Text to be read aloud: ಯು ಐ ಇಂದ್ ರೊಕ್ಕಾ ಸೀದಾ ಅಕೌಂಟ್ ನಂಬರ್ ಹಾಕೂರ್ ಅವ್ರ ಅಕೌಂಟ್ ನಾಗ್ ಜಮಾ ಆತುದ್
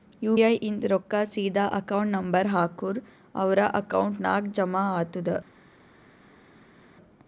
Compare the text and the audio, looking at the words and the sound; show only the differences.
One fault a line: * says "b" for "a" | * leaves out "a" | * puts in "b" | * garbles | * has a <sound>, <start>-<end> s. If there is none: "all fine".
all fine